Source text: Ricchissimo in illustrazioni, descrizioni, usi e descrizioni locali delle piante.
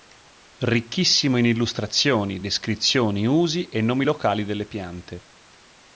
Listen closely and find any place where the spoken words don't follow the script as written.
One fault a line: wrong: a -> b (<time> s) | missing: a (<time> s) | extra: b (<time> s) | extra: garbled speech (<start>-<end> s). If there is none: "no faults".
wrong: descrizioni -> nomi (3.8 s)